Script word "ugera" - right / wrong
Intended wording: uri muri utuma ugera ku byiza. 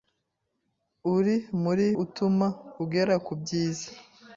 right